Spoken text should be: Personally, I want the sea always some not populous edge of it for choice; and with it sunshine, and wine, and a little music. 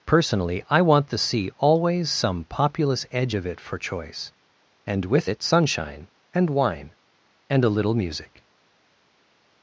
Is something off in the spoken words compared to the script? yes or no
yes